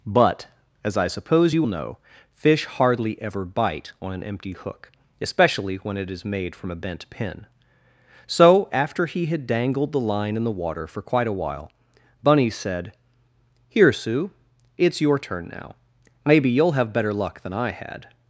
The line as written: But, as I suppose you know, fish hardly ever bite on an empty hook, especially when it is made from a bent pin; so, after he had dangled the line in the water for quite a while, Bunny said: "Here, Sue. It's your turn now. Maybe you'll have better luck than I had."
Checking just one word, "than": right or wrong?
right